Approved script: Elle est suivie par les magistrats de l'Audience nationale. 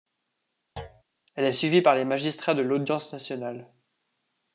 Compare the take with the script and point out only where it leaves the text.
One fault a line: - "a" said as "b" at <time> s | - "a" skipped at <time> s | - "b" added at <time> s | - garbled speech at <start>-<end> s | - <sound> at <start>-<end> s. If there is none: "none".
- thud at 0.8-1.0 s